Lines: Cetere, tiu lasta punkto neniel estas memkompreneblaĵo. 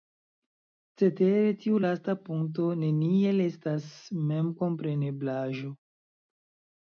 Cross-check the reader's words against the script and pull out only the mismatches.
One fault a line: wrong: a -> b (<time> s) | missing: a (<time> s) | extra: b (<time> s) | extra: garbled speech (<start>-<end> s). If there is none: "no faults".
no faults